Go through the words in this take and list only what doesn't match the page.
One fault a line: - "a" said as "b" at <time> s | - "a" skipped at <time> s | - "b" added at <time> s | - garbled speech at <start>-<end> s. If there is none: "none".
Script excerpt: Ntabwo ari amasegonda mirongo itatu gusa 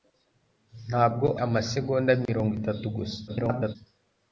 - "ari" skipped at 1.3 s
- garbled speech at 3.3-3.8 s